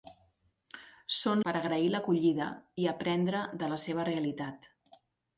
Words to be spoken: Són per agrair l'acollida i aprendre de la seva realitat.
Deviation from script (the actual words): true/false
false